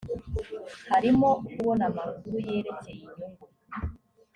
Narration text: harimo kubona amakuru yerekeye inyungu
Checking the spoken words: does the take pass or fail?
pass